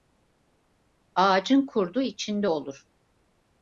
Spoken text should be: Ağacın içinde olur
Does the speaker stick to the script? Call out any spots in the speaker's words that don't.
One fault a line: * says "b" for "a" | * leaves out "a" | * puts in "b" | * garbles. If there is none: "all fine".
* puts in "kurdu"